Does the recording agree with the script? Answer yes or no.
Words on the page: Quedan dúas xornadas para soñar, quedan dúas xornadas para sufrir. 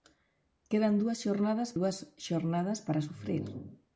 no